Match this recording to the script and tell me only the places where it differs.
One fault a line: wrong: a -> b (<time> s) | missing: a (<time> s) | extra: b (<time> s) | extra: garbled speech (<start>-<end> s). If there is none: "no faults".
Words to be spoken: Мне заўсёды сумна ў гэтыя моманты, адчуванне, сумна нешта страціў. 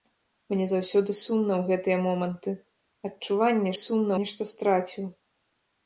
no faults